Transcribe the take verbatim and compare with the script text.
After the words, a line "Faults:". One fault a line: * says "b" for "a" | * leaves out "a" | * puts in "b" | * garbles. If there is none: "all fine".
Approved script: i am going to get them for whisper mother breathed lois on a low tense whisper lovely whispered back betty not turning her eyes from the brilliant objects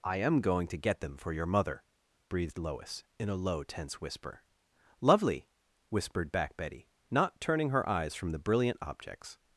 i am going to get them for your mother breathed lois in a low tense whisper lovely whispered back betty not turning her eyes from the brilliant objects
Faults:
* says "your" for "whisper"
* says "in" for "on"